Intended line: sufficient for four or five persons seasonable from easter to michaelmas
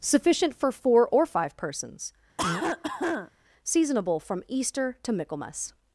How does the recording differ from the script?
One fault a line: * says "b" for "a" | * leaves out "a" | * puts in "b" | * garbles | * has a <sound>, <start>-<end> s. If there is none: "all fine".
* has a cough, 2.4-3.3 s